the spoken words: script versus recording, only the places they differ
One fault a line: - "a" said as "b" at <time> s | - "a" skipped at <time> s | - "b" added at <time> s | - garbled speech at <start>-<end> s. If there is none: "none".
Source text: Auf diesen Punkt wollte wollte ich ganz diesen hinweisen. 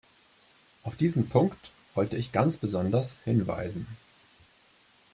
- "wollte" skipped at 2.2 s
- "diesen" said as "besonders" at 2.6 s